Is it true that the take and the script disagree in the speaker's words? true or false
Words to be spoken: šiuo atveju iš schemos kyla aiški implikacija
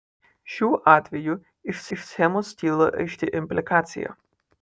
true